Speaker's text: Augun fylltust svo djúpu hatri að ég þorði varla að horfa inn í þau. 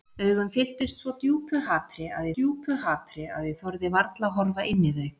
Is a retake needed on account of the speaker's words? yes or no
yes